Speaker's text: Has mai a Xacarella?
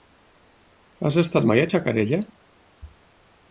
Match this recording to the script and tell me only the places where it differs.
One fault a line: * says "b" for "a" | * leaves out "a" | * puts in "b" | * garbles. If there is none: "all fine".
* puts in "estat"